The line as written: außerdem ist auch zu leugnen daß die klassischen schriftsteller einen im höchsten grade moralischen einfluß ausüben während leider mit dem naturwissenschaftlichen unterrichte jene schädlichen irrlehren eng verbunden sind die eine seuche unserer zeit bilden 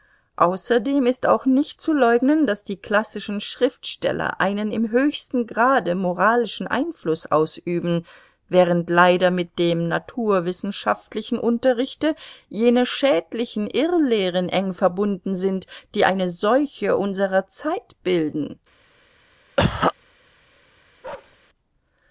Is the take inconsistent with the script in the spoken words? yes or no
yes